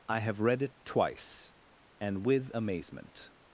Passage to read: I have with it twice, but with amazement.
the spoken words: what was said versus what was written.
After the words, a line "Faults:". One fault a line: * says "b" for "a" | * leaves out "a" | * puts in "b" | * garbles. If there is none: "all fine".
I have read it twice, and with amazement.
Faults:
* says "read" for "with"
* says "and" for "but"